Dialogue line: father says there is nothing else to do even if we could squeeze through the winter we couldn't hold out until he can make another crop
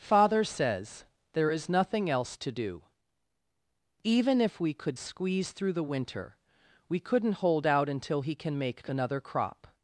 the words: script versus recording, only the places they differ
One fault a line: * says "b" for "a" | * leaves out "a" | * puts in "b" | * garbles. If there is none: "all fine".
all fine